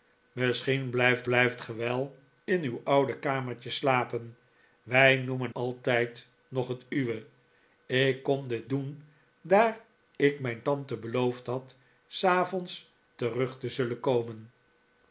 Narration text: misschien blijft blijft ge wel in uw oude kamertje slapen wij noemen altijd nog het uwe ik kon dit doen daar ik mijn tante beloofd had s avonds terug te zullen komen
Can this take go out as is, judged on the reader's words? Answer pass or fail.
pass